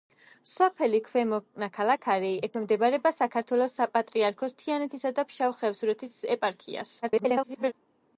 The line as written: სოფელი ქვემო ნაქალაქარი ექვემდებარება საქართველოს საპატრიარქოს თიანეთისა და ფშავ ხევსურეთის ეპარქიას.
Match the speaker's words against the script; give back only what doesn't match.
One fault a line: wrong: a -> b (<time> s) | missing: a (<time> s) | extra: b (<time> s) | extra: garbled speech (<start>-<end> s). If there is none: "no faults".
extra: garbled speech (7.0-7.7 s)